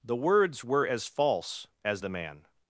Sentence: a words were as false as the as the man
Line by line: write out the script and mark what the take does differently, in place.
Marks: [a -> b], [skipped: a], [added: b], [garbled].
[a -> the] words were as false as the [skipped: as the] man